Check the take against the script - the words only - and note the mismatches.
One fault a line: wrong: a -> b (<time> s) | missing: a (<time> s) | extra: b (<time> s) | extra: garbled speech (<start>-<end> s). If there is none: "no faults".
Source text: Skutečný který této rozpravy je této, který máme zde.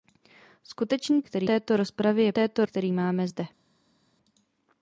no faults